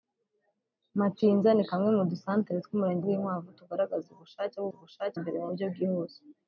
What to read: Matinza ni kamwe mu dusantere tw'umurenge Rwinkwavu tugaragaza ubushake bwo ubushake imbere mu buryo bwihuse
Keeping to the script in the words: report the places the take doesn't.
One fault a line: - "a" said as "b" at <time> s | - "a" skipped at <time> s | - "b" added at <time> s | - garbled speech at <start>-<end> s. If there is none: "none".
none